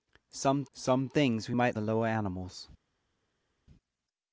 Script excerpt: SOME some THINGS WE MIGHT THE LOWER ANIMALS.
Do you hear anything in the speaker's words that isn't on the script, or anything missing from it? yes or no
no